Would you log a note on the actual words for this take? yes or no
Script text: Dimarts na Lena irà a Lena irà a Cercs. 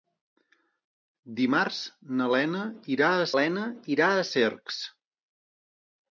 no